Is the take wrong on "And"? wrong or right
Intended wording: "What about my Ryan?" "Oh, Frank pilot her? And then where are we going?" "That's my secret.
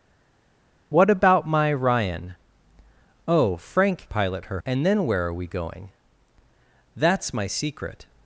right